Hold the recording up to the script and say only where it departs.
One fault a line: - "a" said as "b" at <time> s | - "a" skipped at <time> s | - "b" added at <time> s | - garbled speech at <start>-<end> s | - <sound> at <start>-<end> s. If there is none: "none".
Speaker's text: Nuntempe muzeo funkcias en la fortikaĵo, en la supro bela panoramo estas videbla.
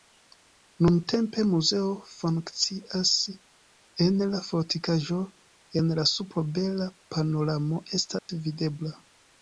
- dropout at 8.2-8.3 s